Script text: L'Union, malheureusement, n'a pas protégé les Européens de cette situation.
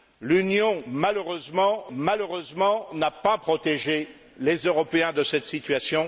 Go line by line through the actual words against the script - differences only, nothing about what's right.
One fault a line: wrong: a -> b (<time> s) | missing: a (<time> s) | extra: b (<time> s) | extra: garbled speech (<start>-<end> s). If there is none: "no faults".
extra: malheureusement (1.9 s)